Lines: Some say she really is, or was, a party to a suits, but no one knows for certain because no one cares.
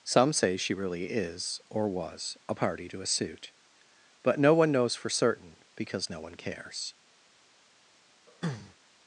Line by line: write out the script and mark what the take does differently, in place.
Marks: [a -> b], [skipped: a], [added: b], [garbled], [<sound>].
Some say she really is, or was, a party to a [suits, -> suit] but no one knows for certain because no one cares. [throat clearing]